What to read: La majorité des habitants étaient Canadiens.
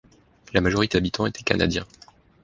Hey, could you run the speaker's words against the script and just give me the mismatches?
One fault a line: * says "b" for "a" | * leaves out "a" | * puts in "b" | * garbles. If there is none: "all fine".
* leaves out "des"